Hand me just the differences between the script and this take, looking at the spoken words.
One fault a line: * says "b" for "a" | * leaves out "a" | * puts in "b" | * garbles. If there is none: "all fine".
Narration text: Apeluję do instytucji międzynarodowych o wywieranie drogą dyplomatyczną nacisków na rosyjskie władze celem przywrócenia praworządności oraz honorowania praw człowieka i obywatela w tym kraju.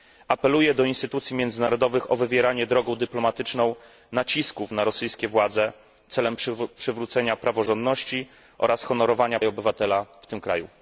* leaves out "praw człowieka"